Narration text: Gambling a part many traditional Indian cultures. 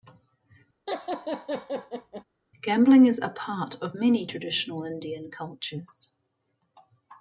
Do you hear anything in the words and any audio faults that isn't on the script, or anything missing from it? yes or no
yes